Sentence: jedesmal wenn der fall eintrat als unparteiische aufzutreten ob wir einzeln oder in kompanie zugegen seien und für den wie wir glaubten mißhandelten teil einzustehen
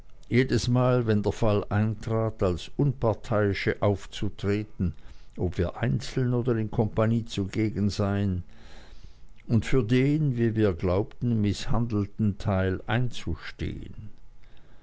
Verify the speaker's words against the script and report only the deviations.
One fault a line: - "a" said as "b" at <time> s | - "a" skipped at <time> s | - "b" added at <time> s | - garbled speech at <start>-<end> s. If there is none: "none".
none